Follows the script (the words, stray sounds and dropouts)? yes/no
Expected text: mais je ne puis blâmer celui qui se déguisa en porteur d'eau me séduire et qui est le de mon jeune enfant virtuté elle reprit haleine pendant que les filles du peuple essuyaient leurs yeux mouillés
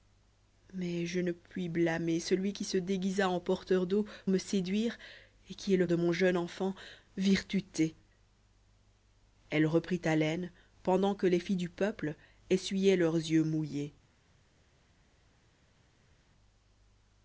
yes